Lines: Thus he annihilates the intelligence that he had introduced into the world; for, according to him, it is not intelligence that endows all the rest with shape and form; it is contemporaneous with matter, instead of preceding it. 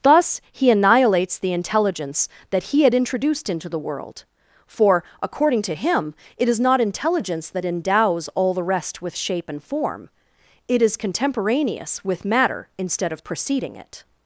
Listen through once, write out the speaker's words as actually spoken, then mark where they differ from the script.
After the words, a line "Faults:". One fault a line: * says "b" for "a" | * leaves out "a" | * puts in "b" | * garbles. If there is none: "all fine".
Thus he annihilates the intelligence that he had introduced into the world; for, according to him, it is not intelligence that endows all the rest with shape and form; it is contemporaneous with matter, instead of preceding it.
Faults:
all fine